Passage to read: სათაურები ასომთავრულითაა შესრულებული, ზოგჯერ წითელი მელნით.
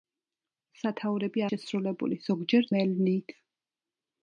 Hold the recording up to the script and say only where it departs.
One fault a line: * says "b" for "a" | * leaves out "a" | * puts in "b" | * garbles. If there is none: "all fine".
* leaves out "ასომთავრულითაა"
* leaves out "წითელი"